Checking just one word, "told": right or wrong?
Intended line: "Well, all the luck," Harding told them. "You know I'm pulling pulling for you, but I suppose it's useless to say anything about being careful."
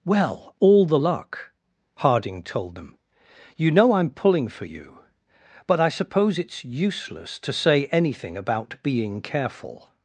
right